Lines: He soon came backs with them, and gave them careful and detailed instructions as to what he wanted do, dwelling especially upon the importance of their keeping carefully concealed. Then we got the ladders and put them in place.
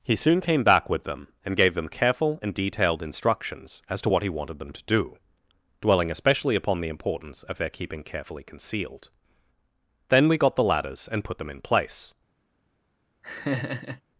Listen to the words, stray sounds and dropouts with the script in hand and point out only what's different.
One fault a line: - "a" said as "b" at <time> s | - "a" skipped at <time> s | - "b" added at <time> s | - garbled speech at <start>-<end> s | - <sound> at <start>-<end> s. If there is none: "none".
- "backs" said as "back" at 0.6 s
- "them to" added at 4.6 s
- laugh at 13.2-14.0 s